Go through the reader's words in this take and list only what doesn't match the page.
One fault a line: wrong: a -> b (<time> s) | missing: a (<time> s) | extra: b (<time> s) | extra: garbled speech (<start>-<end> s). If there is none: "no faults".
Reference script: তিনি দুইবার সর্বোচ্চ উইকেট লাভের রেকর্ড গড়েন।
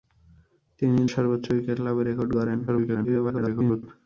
missing: দুইবার (1.0 s)
extra: garbled speech (2.7-3.8 s)